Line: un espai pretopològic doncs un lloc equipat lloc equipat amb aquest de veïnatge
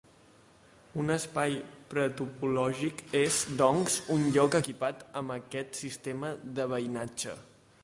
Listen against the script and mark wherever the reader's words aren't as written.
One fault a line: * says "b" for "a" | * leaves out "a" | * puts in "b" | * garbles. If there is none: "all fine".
* puts in "és"
* leaves out "lloc equipat"
* puts in "sistema"